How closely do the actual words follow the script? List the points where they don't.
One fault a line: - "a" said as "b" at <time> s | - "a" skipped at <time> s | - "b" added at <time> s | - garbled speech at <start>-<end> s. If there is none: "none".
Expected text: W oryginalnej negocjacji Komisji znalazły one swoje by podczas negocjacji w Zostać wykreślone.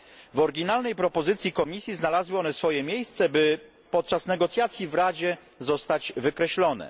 - "negocjacji" said as "propozycji" at 0.9 s
- "miejsce" added at 2.8 s
- "Radzie" added at 4.9 s